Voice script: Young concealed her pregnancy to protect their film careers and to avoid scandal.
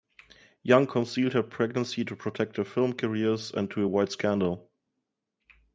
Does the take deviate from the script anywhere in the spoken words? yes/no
no